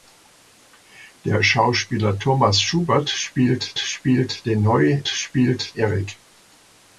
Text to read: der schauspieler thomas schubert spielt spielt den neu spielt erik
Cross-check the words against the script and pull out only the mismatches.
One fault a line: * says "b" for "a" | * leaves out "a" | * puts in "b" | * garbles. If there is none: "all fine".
all fine